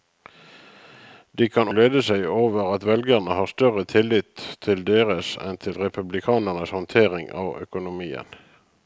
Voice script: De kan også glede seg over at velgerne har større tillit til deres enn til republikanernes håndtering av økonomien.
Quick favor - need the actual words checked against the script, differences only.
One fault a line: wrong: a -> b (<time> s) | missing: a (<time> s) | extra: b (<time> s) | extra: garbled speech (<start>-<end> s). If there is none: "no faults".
missing: også (1.7 s)